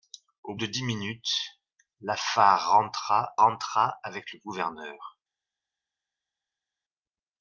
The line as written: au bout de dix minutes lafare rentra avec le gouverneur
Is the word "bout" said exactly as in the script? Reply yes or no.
no